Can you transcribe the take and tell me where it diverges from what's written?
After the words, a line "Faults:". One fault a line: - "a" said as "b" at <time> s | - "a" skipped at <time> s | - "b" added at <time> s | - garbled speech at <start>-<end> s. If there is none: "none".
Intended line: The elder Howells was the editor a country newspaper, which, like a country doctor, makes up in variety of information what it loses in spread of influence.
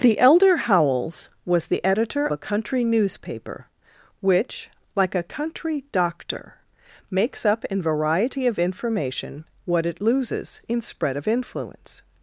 The elder Howells was the editor a country newspaper, which, like a country doctor, makes up in variety of information what it loses in spread of influence.
Faults:
none